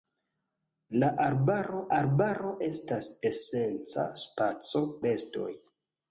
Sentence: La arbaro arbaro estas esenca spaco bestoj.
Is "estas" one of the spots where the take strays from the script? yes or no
no